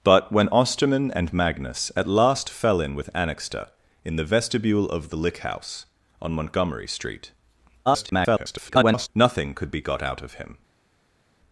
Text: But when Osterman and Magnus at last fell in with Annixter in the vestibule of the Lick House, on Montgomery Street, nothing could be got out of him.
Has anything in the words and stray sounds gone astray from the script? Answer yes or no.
yes